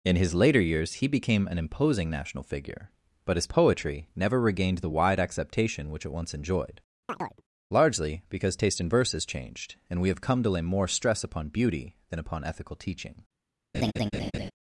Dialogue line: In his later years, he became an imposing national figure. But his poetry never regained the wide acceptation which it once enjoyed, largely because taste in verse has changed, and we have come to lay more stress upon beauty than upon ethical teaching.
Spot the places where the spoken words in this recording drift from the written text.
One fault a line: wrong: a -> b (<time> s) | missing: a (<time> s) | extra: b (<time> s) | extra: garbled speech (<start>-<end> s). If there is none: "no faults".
no faults